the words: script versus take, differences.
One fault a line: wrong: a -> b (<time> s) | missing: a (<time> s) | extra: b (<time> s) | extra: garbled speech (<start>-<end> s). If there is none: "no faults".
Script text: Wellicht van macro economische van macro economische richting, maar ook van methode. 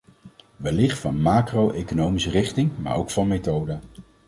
missing: van macro economische (2.3 s)